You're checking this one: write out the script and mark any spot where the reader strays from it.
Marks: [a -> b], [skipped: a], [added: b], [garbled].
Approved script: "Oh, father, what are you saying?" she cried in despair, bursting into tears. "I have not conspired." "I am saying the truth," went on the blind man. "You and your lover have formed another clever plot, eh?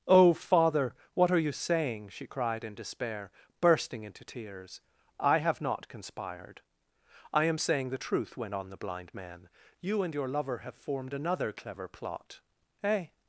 "Oh, father, what are you saying?" she cried in despair, bursting into tears. "I have not conspired." "I am saying the truth," went on the blind man. "You and your lover have formed another clever plot, eh?